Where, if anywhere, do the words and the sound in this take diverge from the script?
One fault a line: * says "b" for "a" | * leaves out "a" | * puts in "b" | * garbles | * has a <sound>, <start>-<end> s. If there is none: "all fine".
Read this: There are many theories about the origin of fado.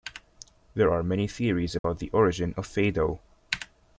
* has a dropout, 1.8-1.8 s